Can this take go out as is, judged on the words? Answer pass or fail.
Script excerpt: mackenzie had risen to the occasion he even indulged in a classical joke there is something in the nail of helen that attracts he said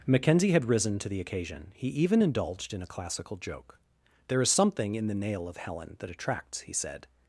pass